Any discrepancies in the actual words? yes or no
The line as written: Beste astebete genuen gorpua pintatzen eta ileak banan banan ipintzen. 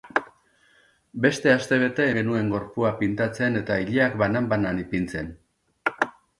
no